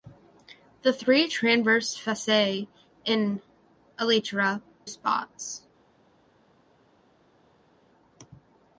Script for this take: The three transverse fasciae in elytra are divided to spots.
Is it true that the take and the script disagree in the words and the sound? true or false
true